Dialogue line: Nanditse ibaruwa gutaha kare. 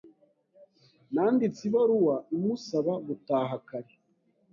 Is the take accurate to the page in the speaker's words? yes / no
no